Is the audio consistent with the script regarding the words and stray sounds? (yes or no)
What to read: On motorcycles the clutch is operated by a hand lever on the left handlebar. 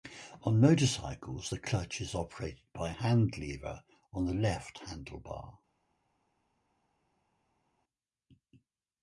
yes